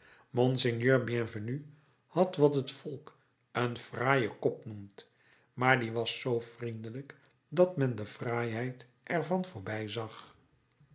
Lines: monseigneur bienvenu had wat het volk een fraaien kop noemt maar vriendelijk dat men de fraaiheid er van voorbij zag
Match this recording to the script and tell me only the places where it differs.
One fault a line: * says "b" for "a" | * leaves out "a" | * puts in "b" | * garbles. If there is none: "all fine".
* puts in "die was zoo"